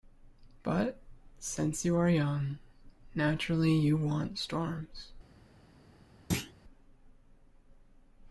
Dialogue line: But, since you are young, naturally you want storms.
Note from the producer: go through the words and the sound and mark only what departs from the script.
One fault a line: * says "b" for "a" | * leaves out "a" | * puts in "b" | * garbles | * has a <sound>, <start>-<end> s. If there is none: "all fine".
* has a thud, 6.3-6.5 s